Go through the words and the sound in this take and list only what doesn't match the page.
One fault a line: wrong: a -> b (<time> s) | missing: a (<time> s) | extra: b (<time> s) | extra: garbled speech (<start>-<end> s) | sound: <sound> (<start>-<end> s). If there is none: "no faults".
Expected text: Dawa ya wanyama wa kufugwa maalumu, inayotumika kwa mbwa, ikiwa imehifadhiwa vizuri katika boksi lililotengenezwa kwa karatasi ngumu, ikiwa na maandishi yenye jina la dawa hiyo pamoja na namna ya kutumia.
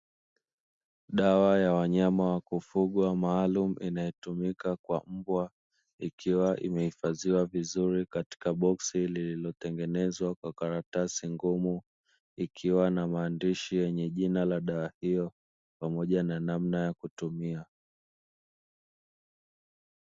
no faults